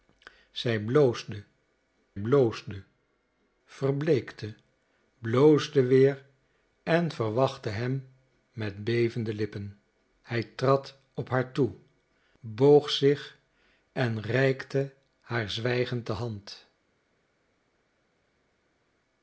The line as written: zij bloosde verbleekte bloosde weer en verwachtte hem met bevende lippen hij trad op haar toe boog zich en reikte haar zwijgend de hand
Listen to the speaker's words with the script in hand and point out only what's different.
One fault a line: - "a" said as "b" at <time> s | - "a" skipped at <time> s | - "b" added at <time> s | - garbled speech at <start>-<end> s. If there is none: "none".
- "bloosde" added at 2.2 s